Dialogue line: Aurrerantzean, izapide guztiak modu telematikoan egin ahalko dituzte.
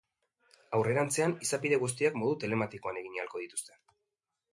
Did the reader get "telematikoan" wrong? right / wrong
right